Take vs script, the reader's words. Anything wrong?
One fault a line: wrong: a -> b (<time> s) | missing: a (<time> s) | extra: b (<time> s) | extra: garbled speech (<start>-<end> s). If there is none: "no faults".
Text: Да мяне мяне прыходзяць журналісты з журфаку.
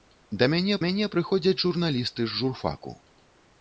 no faults